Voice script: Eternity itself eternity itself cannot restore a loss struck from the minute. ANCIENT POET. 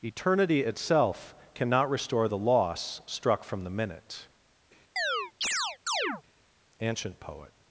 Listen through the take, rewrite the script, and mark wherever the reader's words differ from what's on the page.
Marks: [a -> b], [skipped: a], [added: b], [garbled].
Eternity itself [skipped: eternity itself] cannot restore [a -> the] loss struck from the minute. ANCIENT POET.